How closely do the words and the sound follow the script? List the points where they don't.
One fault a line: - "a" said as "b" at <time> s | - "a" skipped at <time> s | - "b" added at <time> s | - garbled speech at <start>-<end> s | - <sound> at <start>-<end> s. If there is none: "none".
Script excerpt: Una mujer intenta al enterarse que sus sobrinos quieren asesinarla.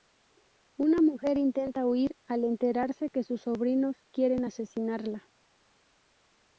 - "huir" added at 1.9 s